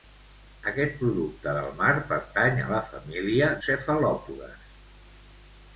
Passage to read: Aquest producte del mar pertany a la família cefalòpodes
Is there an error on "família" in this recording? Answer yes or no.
no